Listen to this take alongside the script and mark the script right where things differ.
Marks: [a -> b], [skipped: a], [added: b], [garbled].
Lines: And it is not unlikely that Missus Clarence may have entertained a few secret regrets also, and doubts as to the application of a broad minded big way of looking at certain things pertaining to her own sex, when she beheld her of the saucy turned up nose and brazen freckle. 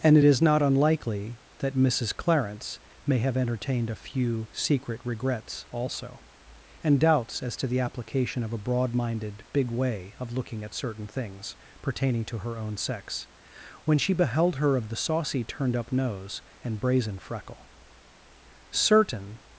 And it is not unlikely that Missus Clarence may have entertained a few secret regrets also, and doubts as to the application of a broad minded big way of looking at certain things pertaining to her own sex, when she beheld her of the saucy turned up nose and brazen freckle. [added: Certain]